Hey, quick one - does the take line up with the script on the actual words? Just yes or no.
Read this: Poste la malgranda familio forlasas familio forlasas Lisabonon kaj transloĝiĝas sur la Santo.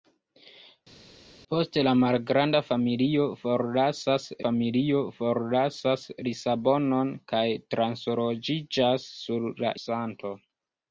yes